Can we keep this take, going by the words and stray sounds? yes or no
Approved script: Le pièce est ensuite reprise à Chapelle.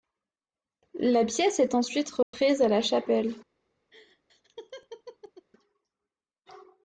no